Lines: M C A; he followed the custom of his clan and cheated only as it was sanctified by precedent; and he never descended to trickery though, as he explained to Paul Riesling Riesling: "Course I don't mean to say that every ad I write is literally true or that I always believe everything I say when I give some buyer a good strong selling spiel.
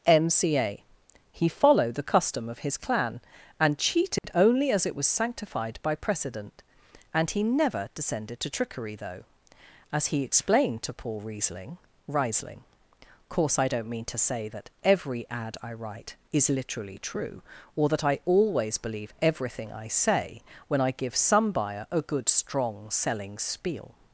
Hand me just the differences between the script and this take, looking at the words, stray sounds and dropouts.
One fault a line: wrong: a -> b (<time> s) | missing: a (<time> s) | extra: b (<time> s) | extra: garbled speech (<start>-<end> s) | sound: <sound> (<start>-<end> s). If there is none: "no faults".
sound: dropout (4.2-4.2 s)